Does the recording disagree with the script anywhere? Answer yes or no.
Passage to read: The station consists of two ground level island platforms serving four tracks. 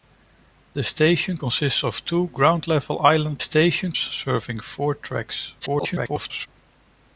yes